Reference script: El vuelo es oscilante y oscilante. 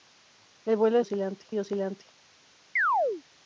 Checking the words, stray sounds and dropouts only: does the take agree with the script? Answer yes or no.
no